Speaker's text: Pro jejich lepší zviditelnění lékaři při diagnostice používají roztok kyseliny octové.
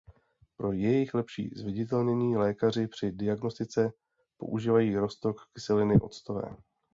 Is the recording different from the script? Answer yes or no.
no